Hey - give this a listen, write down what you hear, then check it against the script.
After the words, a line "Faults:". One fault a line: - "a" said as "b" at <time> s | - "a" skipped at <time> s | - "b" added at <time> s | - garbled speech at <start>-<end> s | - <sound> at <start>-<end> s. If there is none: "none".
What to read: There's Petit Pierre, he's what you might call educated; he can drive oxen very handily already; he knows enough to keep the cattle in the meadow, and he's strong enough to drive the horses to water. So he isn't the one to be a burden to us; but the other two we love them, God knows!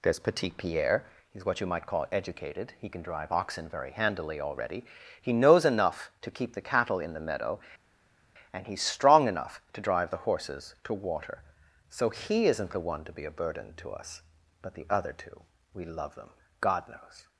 There's Petit Pierre, he's what you might call educated; he can drive oxen very handily already; he knows enough to keep the cattle in the meadow, and he's strong enough to drive the horses to water. So he isn't the one to be a burden to us; but the other two we love them, God knows!
Faults:
none